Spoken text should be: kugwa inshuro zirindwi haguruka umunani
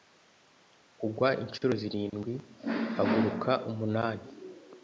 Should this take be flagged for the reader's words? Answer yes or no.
no